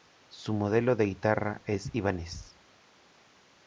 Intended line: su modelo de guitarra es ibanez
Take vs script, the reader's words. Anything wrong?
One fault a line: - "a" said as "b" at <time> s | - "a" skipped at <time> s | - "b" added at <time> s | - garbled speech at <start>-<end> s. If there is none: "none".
none